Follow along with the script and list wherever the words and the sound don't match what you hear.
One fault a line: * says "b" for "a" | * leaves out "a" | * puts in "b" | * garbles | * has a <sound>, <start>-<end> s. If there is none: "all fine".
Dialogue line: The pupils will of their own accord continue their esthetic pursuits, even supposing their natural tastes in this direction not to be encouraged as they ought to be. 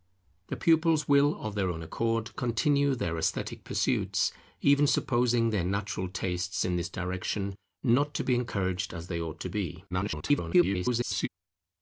* garbles